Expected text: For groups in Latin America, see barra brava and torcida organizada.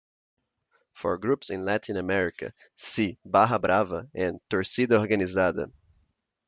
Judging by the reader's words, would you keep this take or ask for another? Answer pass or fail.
pass